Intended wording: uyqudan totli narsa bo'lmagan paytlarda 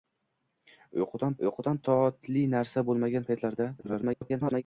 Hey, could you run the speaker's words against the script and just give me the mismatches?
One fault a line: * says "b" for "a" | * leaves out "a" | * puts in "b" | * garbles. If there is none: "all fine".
* puts in "uyqudan"
* garbles